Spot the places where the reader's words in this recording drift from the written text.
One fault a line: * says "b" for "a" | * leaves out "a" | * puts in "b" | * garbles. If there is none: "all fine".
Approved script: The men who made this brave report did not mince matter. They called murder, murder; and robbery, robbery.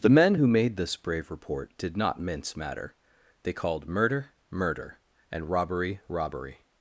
all fine